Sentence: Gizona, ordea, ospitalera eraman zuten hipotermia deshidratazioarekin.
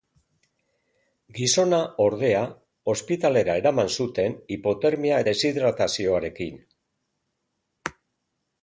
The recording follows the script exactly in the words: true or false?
true